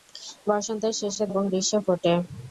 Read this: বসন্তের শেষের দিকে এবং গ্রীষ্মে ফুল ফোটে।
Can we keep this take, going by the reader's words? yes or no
no